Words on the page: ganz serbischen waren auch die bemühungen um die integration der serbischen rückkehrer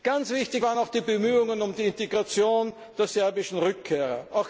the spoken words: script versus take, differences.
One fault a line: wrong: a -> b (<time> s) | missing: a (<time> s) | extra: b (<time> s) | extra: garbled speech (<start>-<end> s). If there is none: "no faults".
wrong: serbischen -> wichtig (0.3 s)